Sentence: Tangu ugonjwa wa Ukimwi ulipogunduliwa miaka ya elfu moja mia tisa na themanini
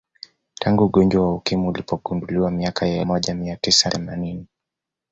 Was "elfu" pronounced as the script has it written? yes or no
no